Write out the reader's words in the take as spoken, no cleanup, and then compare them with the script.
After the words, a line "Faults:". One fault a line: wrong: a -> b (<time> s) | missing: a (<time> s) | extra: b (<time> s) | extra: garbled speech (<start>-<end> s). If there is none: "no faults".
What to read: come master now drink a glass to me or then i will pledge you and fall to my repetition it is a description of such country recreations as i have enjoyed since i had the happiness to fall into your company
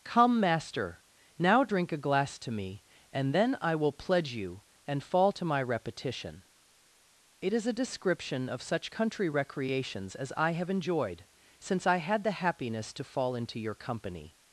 come master now drink a glass to me and then i will pledge you and fall to my repetition it is a description of such country recreations as i have enjoyed since i had the happiness to fall into your company
Faults:
wrong: or -> and (3.1 s)